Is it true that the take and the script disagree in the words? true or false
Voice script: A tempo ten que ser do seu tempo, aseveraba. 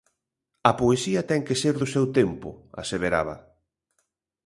true